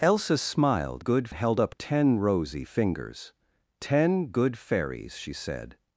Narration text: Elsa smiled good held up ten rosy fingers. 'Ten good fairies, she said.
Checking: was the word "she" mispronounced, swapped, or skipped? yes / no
no